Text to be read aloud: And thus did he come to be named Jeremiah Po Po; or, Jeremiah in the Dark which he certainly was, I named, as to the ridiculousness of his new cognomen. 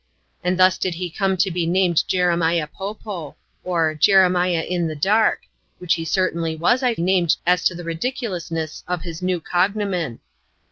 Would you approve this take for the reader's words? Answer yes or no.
yes